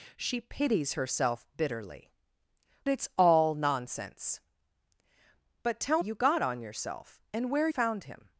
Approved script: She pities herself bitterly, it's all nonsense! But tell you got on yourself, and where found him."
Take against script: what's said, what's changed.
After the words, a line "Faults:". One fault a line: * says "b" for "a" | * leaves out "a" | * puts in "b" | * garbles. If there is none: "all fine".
She pities herself bitterly, it's all nonsense! But tell you got on yourself, and where found him."
Faults:
all fine